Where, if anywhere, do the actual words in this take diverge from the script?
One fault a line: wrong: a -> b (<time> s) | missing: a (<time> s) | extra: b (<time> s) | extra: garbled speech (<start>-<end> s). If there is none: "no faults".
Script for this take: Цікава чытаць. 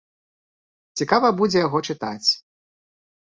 extra: будзе яго (1.4 s)